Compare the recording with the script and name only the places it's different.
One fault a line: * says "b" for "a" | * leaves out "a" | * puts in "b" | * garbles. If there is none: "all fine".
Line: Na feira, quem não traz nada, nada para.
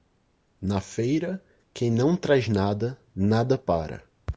all fine